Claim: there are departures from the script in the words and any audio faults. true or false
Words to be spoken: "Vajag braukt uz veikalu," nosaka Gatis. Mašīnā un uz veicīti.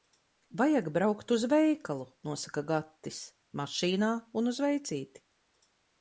false